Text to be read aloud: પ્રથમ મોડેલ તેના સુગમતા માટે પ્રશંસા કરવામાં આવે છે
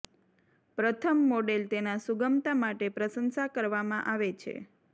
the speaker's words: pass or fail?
pass